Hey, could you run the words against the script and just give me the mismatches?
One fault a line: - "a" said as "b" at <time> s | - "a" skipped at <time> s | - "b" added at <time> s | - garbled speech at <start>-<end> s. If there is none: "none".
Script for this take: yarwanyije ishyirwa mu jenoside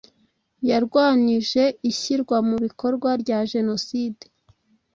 - "bikorwa rya" added at 2.6 s